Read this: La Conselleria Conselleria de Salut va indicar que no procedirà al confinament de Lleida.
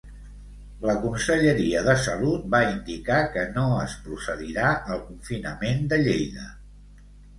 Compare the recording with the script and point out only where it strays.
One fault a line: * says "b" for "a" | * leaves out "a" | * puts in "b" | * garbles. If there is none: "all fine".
* leaves out "Conselleria"
* puts in "es"